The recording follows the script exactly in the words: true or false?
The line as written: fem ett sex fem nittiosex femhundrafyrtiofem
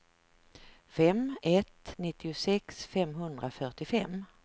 false